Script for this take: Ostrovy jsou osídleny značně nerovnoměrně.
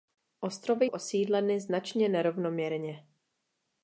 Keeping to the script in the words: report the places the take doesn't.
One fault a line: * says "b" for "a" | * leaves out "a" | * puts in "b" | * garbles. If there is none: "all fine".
* leaves out "jsou"